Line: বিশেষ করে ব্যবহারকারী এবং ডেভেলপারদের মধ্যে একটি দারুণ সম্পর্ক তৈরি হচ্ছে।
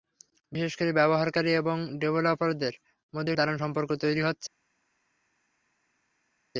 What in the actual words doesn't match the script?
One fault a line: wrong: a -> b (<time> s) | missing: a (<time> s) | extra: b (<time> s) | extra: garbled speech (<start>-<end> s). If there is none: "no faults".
missing: একটি (3.3 s)